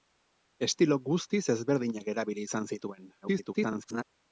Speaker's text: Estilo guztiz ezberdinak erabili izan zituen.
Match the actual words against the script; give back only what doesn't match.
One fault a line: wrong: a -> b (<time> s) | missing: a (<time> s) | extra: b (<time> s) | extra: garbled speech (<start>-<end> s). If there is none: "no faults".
extra: garbled speech (3.2-4.0 s)